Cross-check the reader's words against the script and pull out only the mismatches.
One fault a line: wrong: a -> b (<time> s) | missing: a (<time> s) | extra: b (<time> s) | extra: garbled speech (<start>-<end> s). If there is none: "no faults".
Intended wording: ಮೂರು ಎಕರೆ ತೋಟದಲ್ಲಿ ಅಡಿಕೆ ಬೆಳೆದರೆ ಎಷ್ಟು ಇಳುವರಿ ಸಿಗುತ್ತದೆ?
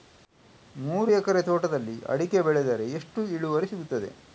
no faults